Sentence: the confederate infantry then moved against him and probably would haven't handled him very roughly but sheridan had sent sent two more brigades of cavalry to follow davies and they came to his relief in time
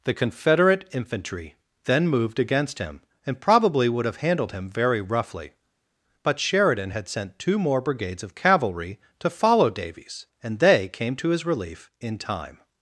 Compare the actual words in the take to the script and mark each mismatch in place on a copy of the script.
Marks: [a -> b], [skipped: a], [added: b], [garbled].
the confederate infantry then moved against him and probably would [haven't -> have] handled him very roughly but sheridan had sent [skipped: sent] two more brigades of cavalry to follow davies and they came to his relief in time